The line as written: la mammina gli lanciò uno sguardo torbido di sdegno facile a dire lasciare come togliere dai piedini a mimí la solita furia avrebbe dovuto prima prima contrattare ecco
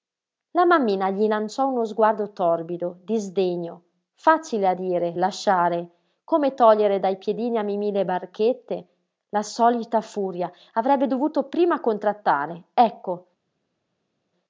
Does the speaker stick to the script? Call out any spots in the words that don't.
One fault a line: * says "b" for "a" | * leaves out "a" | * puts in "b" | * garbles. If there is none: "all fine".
* puts in "le barchette"
* leaves out "prima"